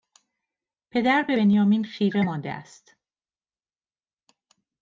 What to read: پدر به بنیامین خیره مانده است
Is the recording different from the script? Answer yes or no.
no